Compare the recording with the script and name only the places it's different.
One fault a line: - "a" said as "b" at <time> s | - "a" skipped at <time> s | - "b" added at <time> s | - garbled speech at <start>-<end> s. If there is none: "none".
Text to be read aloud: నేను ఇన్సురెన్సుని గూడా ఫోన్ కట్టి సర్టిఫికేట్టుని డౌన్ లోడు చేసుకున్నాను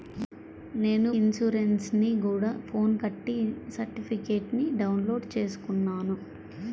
none